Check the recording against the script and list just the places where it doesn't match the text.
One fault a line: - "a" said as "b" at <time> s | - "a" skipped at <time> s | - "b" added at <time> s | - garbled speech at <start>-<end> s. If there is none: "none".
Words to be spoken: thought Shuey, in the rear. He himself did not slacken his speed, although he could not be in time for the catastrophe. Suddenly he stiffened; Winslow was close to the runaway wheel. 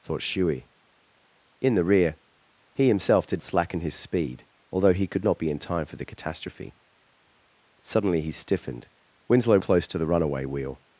- "not" skipped at 3.4 s
- "was" skipped at 9.6 s